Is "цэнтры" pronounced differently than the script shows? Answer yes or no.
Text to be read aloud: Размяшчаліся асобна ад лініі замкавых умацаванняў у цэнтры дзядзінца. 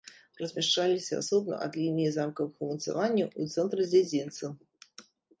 no